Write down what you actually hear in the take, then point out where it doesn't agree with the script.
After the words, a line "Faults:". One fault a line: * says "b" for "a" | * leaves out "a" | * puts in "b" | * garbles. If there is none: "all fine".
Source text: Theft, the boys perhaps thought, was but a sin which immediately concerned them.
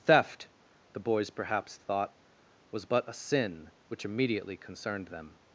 Theft, the boys perhaps thought, was but a sin which immediately concerned them.
Faults:
all fine